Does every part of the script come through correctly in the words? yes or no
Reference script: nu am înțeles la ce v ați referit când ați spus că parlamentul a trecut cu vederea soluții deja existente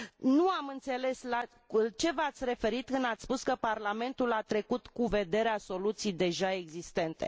yes